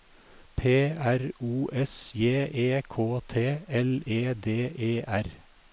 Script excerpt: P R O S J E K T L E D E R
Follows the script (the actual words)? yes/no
yes